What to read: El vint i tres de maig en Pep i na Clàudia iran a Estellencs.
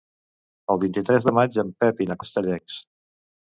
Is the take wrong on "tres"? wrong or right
right